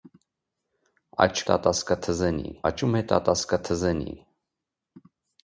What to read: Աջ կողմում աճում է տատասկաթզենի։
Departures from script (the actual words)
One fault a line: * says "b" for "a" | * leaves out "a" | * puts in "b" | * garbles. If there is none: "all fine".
* says "տատասկաթզենի" for "կողմում"